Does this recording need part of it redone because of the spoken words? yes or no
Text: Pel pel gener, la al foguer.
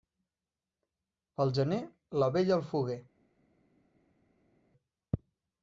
yes